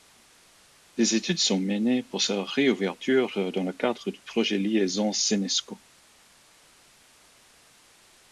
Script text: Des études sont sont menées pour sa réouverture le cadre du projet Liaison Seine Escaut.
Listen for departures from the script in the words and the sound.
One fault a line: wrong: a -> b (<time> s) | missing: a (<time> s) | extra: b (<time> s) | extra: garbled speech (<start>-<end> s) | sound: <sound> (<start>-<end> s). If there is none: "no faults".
missing: sont (1.6 s)
extra: dans (3.5 s)